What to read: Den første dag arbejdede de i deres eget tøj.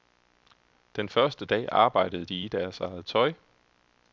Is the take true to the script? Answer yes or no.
yes